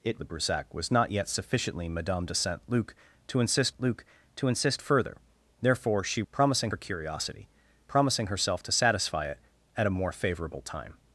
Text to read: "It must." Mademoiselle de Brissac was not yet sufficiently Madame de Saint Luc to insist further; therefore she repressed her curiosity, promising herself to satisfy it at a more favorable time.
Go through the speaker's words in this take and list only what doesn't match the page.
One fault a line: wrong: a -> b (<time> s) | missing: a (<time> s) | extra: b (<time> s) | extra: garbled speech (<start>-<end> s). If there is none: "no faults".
missing: must Mademoiselle (0.2 s)
extra: Luc to insist (3.8 s)
wrong: repressed -> promising (6.3 s)